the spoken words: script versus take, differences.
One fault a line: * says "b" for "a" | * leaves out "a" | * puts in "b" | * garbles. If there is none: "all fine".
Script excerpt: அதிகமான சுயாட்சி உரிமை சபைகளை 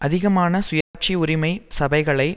all fine